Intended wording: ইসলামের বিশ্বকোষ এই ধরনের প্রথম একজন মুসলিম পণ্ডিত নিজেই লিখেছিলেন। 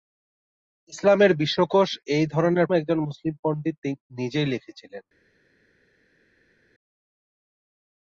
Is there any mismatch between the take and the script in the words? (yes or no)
yes